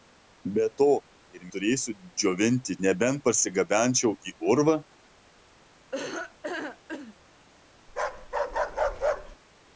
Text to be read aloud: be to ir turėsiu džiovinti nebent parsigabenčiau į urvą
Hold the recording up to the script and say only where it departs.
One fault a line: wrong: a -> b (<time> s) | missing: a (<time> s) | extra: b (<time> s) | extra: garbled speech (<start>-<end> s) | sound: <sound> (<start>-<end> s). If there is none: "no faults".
sound: laugh (5.9-7.2 s)
sound: bark (7.9-9.4 s)